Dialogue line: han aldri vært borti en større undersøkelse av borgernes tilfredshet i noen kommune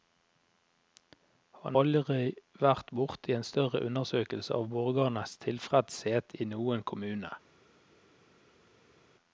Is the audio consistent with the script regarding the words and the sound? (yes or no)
yes